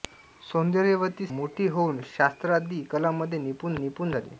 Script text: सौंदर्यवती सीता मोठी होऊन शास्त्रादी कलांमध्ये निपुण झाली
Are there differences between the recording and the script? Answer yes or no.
yes